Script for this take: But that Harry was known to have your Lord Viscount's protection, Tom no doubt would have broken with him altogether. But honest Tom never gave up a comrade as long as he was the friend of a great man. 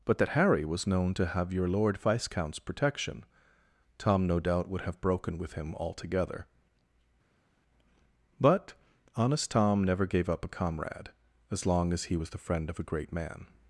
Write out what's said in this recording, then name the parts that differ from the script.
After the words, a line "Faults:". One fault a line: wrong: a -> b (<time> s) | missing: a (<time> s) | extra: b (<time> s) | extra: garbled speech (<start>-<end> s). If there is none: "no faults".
But that Harry was known to have your Lord Viscount's protection, Tom no doubt would have broken with him altogether. But honest Tom never gave up a comrade as long as he was the friend of a great man.
Faults:
no faults